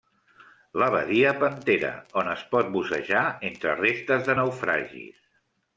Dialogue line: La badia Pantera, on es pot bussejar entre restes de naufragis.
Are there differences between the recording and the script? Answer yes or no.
no